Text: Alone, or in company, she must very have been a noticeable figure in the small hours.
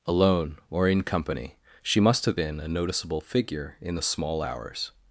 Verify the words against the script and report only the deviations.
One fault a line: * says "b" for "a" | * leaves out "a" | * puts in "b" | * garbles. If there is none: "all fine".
* leaves out "very"